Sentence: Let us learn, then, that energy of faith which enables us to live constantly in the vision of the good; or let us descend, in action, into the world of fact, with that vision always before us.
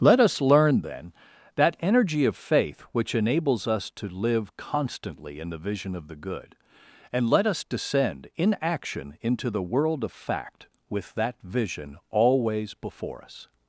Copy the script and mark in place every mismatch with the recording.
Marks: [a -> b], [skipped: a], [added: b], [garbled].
Let us learn, then, that energy of faith which enables us to live constantly in the vision of the good; [or -> and] let us descend, in action, into the world of fact, with that vision always before us.